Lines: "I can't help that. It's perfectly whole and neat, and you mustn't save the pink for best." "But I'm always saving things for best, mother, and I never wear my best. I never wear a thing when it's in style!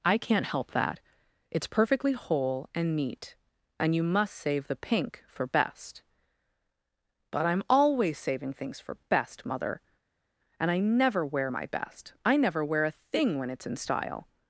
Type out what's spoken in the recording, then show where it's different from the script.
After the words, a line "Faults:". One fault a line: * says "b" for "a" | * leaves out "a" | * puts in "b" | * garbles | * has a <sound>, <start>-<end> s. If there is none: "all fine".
"I can't help that. It's perfectly whole and neat, and you must save the pink for best." "But I'm always saving things for best, mother, and I never wear my best. I never wear a thing when it's in style!
Faults:
* says "must" for "mustn't"